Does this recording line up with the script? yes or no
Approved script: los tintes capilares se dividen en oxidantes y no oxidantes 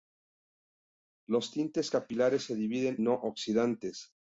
no